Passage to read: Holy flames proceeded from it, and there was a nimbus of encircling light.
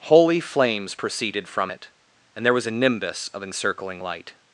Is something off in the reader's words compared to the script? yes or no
no